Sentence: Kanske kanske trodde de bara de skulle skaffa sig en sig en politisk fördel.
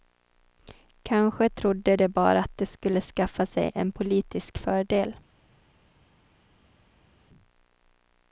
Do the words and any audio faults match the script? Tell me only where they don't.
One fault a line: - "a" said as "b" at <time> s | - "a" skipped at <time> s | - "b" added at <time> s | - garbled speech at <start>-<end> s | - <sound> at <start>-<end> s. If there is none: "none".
- "kanske" skipped at 1.5 s
- "att" added at 2.4 s
- "sig en" skipped at 3.9 s